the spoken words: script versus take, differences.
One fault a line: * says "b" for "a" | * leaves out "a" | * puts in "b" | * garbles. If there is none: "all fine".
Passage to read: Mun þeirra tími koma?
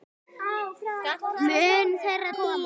* leaves out "tími"